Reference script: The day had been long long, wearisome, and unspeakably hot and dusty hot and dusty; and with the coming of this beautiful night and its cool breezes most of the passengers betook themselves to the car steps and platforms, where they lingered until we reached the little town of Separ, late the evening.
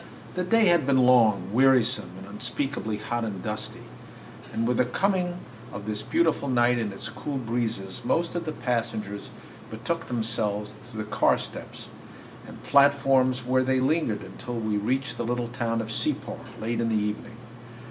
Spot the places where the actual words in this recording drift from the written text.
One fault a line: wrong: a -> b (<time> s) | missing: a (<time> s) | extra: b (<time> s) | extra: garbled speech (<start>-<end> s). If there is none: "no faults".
missing: long (1.5 s)
missing: hot (3.8 s)
missing: dusty and (4.7 s)
extra: in (16.8 s)